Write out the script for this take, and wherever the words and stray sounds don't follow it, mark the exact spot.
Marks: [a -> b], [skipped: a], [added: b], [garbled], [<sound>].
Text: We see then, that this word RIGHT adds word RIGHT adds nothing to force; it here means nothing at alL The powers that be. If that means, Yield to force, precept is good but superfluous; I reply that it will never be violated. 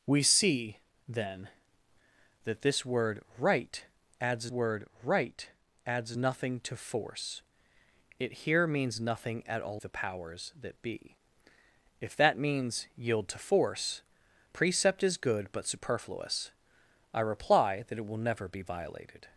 We see then, that this word RIGHT adds word RIGHT adds nothing to force; it here means nothing at alL The powers that be. If that means, Yield to force, precept is good but superfluous; I reply that it will never be violated.